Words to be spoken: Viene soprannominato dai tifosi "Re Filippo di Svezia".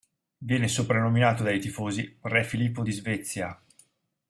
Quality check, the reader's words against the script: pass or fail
pass